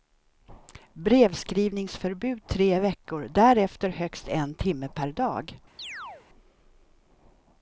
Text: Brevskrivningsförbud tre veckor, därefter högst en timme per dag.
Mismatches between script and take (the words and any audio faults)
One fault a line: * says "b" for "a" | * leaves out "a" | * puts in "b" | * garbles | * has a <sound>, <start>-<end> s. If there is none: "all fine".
* has a chirp, 5.8-6.3 s